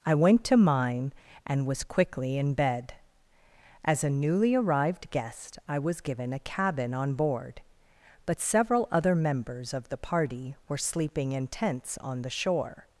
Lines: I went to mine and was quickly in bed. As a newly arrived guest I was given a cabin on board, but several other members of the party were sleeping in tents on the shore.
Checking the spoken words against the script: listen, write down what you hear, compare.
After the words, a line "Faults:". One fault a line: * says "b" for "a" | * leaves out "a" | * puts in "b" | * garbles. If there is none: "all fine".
I went to mine and was quickly in bed. As a newly arrived guest I was given a cabin on board, but several other members of the party were sleeping in tents on the shore.
Faults:
all fine